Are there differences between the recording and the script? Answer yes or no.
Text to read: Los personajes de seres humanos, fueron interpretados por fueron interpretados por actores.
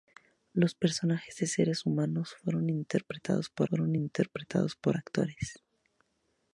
no